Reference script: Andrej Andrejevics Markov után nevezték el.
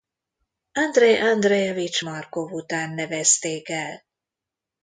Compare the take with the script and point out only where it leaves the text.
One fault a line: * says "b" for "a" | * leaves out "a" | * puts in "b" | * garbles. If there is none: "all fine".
all fine